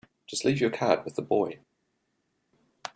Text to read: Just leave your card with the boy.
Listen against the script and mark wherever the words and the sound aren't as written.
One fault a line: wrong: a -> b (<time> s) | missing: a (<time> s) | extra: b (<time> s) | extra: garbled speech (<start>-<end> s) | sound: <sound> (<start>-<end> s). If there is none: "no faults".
no faults